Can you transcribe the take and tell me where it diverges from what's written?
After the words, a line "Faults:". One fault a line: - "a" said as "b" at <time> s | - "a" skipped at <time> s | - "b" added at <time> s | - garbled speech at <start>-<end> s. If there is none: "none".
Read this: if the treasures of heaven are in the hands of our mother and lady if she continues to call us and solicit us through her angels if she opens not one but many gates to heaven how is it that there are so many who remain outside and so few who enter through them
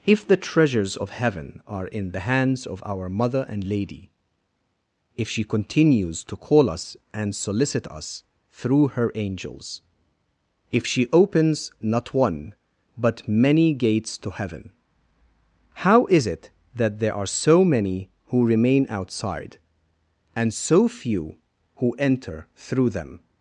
if the treasures of heaven are in the hands of our mother and lady if she continues to call us and solicit us through her angels if she opens not one but many gates to heaven how is it that there are so many who remain outside and so few who enter through them
Faults:
none